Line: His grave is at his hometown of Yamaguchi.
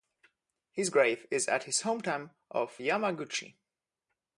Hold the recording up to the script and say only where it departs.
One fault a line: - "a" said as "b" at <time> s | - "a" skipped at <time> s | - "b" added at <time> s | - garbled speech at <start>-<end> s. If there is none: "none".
none